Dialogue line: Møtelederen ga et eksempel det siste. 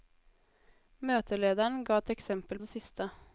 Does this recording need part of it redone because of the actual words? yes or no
no